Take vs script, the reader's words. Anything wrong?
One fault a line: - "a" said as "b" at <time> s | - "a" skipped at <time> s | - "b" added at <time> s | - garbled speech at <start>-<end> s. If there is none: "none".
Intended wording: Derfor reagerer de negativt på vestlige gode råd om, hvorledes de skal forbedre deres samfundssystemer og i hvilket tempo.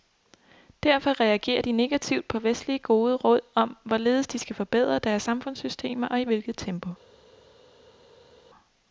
none